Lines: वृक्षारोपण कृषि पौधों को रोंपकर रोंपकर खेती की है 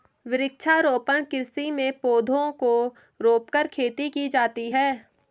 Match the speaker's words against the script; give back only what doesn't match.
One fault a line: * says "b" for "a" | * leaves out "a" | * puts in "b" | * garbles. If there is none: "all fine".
* puts in "में"
* leaves out "रोंपकर"
* puts in "जाती"